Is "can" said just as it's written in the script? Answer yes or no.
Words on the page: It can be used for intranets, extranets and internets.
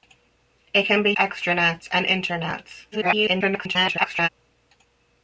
yes